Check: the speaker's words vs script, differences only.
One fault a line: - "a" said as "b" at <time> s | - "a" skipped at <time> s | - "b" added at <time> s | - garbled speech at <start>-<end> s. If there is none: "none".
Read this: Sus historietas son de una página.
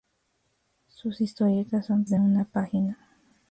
none